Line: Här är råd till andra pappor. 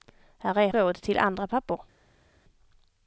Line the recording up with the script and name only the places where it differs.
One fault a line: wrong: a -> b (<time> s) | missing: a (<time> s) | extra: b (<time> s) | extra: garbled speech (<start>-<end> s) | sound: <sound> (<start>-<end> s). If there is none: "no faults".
no faults